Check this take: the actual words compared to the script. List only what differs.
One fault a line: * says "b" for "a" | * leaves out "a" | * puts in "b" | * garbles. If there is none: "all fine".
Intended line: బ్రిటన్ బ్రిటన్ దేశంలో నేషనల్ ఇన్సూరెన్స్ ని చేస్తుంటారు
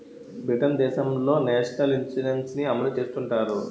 * leaves out "బ్రిటన్"
* puts in "అమలు"